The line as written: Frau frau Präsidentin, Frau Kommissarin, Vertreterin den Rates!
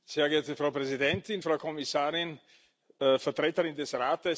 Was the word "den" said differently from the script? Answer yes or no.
yes